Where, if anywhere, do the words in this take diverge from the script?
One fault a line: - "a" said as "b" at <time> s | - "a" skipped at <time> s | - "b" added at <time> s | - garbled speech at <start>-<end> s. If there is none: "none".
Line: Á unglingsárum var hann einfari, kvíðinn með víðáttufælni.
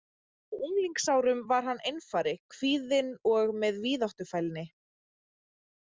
- "og" added at 3.3 s